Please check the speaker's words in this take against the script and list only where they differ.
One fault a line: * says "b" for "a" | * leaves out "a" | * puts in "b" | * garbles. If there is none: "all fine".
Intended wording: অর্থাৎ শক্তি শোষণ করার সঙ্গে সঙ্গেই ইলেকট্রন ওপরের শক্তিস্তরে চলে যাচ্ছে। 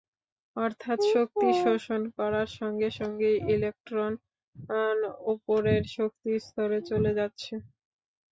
all fine